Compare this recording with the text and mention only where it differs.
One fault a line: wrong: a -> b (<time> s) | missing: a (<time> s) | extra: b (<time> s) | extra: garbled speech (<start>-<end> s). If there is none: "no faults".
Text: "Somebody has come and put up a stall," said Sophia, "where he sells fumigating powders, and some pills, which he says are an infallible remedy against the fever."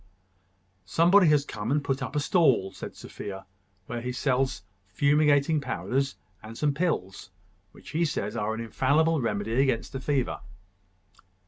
no faults